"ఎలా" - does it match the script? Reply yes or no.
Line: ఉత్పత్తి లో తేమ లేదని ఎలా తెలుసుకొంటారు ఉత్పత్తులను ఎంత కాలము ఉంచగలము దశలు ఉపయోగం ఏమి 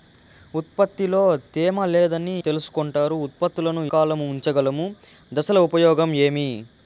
no